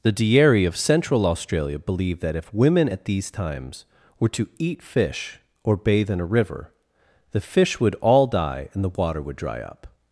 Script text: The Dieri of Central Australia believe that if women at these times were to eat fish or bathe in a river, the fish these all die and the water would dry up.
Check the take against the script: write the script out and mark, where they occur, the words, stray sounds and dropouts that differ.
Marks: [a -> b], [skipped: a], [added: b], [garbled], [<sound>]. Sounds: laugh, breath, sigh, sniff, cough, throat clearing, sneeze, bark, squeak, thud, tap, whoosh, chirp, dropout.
The Dieri of Central Australia believe that if women at these times were to eat fish or bathe in a river, the fish [these -> would] all die and the water would dry up.